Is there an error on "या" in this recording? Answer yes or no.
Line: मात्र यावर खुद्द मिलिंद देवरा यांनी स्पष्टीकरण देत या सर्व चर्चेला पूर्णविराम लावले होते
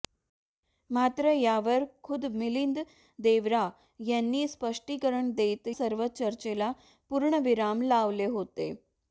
yes